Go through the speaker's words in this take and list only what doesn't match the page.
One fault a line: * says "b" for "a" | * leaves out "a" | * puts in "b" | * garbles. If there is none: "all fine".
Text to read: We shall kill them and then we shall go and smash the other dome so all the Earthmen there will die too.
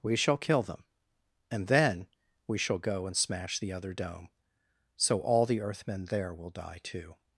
all fine